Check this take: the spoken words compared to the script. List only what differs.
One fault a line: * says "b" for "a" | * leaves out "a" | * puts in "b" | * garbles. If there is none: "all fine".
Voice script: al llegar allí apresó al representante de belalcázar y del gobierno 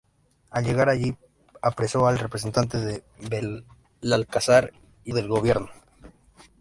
all fine